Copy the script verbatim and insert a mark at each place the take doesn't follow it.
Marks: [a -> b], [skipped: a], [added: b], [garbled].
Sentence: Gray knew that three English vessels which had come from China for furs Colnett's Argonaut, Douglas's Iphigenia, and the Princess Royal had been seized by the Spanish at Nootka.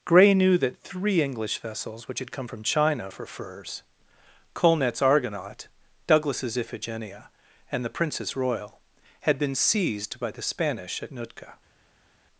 Gray knew that three English vessels which had come from China for furs Colnett's Argonaut, Douglas's Iphigenia, and the Princess Royal had been seized by the Spanish at Nootka.